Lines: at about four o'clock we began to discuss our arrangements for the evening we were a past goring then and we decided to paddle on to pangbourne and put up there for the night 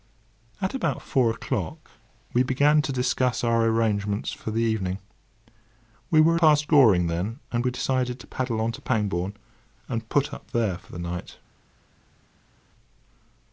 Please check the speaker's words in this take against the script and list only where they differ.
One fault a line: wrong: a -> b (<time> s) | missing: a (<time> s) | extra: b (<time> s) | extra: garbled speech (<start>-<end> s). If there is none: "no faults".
no faults